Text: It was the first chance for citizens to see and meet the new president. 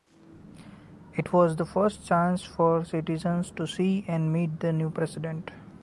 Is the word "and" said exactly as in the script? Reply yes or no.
yes